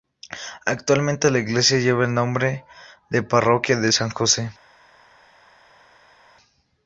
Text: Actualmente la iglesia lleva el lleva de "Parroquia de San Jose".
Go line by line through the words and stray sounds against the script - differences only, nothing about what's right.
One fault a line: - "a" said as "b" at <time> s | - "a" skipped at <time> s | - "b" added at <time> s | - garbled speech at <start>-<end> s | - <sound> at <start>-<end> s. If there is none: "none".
- "lleva" said as "nombre" at 2.1 s